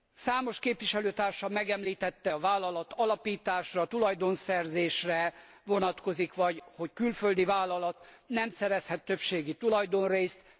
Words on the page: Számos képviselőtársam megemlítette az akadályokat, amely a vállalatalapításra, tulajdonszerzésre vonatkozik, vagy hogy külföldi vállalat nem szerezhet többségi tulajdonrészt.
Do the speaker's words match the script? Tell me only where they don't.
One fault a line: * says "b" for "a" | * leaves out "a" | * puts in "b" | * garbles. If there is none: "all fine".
* leaves out "az akadályokat amely"